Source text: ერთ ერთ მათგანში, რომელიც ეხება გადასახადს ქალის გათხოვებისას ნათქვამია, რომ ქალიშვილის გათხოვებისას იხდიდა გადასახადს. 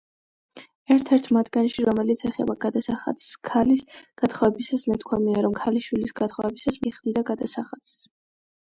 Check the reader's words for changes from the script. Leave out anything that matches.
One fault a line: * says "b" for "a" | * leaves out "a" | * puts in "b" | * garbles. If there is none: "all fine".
all fine